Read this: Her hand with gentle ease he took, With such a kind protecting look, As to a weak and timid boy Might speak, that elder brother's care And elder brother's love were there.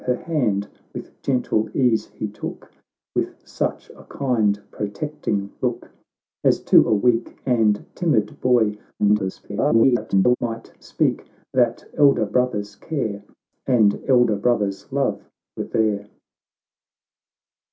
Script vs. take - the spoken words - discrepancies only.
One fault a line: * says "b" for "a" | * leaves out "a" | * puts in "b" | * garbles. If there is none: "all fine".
* garbles